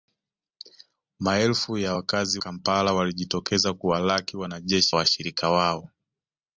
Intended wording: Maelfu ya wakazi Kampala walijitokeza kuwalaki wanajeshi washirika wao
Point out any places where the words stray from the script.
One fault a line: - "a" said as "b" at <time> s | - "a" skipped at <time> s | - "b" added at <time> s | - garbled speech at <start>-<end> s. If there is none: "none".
none